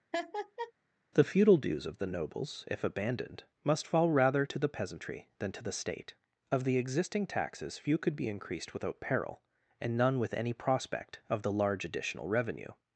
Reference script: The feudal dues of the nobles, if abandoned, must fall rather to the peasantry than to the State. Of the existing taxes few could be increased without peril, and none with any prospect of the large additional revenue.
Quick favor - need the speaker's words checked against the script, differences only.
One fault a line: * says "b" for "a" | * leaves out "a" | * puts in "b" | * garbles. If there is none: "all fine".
all fine